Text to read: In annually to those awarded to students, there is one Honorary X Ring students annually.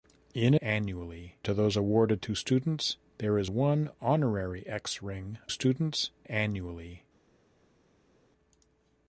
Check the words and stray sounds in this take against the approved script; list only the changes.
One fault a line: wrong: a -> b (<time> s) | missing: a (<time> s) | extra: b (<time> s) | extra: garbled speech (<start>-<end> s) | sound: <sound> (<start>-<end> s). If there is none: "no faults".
no faults